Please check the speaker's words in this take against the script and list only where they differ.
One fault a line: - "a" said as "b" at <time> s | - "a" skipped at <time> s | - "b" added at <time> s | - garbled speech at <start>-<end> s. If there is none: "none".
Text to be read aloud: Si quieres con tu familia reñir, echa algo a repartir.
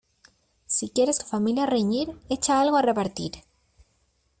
- "con" skipped at 1.2 s